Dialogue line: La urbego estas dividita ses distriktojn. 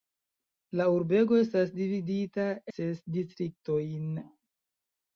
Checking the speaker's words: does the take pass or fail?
pass